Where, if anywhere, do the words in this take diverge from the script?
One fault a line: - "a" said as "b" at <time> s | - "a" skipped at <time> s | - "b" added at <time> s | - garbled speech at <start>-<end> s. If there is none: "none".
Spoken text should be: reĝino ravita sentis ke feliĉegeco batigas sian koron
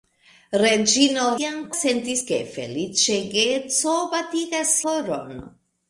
- "ravita" said as "sian" at 1.4 s
- "sian" skipped at 4.8 s